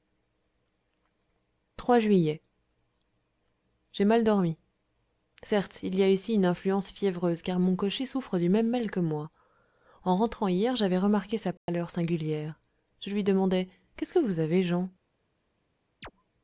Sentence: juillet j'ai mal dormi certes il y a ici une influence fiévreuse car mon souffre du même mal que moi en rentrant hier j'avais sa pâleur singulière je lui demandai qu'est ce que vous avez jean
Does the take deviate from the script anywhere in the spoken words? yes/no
yes